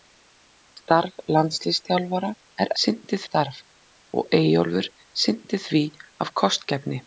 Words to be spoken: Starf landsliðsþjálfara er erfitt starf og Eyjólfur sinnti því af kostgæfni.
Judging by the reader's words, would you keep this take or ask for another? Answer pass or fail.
fail